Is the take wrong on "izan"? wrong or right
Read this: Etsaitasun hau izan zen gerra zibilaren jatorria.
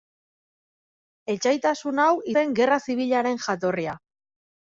wrong